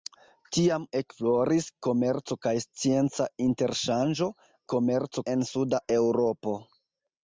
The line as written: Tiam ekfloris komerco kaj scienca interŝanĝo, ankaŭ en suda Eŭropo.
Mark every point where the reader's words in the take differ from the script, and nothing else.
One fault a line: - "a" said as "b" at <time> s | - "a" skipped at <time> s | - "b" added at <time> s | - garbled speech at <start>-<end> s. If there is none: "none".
- "ankaŭ" said as "komerco" at 4.7 s